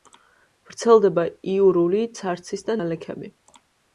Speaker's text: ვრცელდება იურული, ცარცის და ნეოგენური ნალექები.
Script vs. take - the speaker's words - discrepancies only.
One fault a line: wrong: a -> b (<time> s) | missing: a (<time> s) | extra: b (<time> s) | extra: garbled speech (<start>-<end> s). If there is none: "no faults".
missing: ნეოგენური (2.8 s)